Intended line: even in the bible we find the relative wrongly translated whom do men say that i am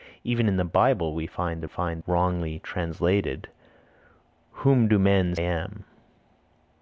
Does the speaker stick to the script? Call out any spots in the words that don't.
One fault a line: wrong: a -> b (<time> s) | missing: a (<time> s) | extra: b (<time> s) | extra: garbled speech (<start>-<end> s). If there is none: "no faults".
wrong: relative -> find (1.6 s)
missing: say that i (5.3 s)